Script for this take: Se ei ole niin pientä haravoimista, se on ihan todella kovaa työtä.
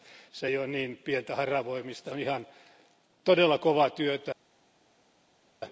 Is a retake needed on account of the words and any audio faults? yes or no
yes